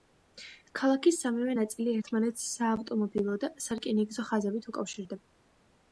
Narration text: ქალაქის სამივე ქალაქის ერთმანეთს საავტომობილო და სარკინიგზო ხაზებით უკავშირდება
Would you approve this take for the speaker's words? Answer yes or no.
no